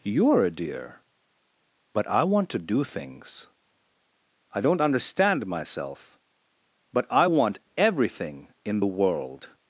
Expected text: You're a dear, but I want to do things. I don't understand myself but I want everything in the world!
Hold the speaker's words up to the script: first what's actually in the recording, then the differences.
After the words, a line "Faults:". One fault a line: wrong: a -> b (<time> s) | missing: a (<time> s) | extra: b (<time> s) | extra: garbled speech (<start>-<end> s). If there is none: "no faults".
You're a dear, but I want to do things. I don't understand myself but I want everything in the world!
Faults:
no faults